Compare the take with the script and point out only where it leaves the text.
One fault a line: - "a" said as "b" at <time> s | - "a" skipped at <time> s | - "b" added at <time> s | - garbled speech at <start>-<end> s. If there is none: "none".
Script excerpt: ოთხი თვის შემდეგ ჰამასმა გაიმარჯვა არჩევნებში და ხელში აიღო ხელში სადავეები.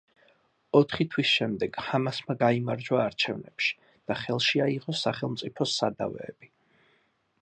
- "ხელში" said as "სახელმწიფოს" at 5.0 s